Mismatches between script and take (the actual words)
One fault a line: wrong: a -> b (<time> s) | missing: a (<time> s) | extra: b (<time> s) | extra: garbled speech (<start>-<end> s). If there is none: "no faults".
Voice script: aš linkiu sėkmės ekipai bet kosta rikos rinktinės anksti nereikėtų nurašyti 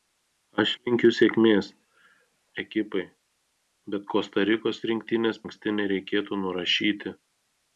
no faults